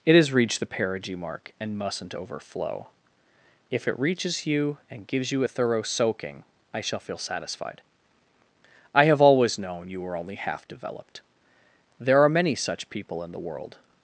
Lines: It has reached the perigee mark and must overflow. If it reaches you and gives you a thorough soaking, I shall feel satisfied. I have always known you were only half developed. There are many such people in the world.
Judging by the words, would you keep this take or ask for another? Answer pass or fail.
fail